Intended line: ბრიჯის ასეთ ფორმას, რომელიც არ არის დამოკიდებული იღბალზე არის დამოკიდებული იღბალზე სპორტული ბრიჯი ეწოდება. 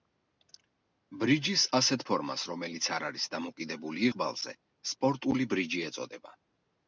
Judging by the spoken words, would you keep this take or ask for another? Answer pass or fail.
fail